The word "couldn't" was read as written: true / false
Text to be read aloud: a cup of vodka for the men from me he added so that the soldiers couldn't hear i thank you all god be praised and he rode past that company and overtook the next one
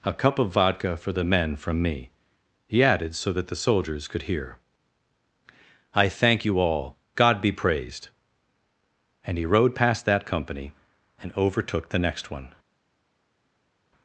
false